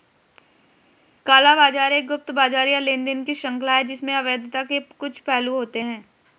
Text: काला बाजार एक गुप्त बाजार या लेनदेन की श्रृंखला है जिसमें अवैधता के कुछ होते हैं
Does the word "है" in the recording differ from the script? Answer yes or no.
no